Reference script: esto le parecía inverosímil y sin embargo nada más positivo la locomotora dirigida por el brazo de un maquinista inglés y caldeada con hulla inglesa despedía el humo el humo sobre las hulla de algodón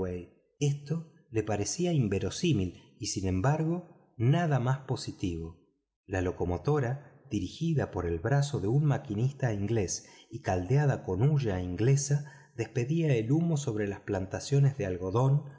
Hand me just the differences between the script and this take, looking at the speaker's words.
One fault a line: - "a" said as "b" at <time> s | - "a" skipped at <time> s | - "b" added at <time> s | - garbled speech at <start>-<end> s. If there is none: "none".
- "el humo" skipped at 13.6 s
- "hulla" said as "plantaciones" at 14.0 s